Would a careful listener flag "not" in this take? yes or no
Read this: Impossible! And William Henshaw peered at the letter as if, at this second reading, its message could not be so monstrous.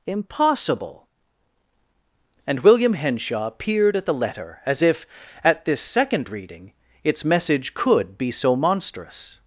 yes